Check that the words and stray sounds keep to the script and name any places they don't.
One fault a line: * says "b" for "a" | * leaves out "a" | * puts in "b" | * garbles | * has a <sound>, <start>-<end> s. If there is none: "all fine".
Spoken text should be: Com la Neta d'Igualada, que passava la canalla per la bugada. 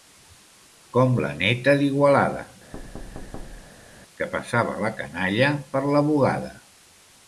* has a thud, 2.7-4.0 s